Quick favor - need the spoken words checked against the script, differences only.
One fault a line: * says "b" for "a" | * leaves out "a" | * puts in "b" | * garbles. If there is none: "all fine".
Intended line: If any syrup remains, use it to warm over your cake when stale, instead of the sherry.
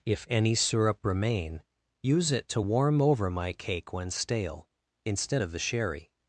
* says "remain" for "remains"
* says "my" for "your"